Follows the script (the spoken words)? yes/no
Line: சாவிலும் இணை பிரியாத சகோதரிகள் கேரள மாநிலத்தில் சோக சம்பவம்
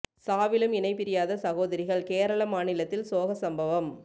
yes